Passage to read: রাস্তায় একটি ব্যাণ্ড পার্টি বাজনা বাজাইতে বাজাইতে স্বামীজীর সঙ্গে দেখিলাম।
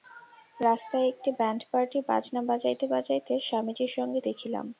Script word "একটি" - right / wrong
right